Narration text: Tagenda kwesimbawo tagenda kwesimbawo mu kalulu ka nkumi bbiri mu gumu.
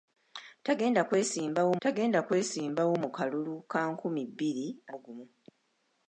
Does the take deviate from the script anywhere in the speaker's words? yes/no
no